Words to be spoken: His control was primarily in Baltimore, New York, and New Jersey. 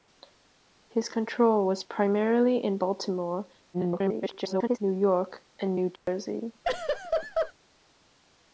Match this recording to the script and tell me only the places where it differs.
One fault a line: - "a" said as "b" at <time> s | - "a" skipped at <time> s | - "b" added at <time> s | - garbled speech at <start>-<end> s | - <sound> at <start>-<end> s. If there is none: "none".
- garbled speech at 3.7-4.8 s
- dropout at 6.0-6.1 s
- laugh at 6.6-7.5 s